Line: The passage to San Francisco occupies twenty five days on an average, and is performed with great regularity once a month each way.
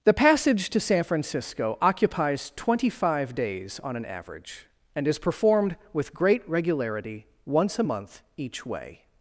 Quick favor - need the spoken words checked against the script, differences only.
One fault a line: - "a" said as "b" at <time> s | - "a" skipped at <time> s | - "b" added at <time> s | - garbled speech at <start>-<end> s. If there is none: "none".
none